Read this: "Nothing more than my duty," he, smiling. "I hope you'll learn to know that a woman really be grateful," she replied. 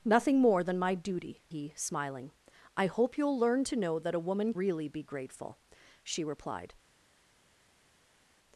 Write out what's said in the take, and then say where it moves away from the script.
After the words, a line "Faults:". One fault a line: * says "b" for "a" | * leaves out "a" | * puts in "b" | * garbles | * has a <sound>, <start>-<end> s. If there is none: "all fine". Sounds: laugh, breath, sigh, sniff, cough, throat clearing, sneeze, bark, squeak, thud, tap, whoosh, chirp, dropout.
"Nothing more than my duty," he, smiling. "I hope you'll learn to know that a woman really be grateful," she replied.
Faults:
all fine